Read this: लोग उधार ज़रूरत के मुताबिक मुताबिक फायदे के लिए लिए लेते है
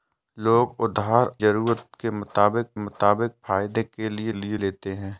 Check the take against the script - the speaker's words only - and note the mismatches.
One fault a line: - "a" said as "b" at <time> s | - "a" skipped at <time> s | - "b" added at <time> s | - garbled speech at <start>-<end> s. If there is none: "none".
none